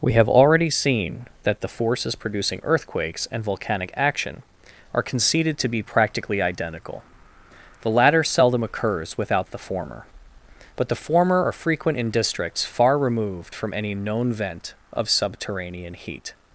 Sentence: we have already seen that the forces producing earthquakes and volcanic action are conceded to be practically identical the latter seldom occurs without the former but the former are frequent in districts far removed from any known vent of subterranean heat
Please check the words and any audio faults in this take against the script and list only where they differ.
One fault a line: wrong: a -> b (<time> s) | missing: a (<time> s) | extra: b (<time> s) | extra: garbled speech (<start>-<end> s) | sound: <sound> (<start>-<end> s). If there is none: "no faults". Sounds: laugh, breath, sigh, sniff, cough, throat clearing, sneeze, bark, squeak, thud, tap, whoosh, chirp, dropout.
no faults